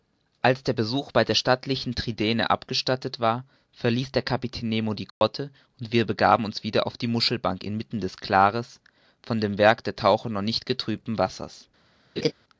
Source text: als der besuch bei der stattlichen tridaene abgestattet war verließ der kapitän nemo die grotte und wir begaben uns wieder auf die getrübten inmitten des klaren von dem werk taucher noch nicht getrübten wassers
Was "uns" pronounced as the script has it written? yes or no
yes